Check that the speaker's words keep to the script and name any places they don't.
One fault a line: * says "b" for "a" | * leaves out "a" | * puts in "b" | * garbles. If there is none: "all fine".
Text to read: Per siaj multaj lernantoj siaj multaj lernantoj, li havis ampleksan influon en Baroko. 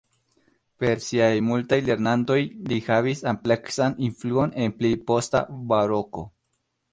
* leaves out "siaj multaj lernantoj"
* puts in "pli posta"